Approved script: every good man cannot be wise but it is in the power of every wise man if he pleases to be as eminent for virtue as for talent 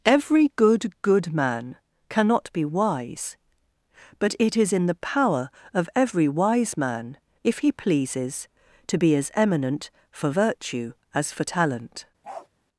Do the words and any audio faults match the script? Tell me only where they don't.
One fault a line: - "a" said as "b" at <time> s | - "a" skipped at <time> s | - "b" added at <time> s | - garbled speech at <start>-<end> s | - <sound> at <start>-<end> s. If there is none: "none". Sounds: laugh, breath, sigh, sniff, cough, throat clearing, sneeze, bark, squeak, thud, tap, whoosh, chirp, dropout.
- "good" added at 1.0 s
- bark at 12.2-12.5 s